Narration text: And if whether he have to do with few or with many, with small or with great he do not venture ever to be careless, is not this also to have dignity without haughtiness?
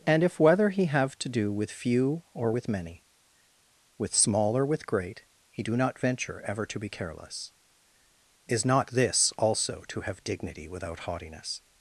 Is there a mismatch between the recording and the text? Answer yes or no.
no